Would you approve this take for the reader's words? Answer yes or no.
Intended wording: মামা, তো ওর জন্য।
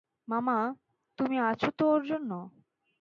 no